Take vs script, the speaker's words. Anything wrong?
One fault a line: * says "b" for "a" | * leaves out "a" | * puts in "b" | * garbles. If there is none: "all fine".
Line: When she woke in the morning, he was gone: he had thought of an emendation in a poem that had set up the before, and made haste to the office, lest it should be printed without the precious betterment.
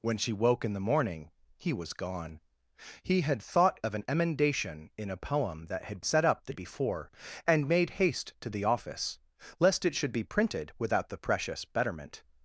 all fine